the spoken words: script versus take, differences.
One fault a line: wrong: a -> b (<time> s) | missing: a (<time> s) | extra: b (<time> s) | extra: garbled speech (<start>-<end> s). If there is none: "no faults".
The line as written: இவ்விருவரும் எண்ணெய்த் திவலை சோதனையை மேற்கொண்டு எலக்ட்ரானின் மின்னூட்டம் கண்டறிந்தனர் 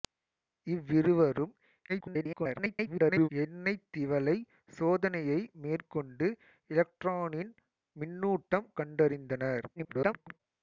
extra: garbled speech (1.9-3.3 s)
extra: garbled speech (9.8-10.4 s)